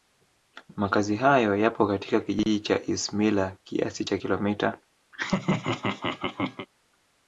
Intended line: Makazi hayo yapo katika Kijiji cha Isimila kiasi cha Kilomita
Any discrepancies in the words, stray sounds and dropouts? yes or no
yes